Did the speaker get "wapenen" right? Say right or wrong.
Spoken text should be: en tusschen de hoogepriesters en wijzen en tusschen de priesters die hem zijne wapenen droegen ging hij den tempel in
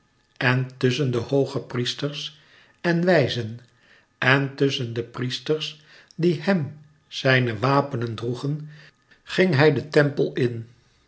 right